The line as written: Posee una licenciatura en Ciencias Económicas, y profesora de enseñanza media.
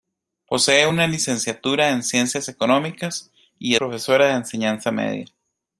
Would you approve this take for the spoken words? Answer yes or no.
yes